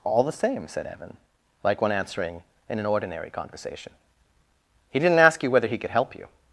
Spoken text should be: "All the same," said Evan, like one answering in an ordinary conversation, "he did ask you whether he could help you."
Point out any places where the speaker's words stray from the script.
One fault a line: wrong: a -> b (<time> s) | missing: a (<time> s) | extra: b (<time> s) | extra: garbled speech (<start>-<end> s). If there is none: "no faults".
wrong: did -> didn't (5.0 s)